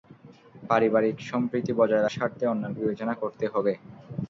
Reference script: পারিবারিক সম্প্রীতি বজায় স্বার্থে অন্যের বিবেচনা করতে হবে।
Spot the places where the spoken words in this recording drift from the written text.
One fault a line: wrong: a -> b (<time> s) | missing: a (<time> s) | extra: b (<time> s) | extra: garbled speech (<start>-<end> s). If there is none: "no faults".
no faults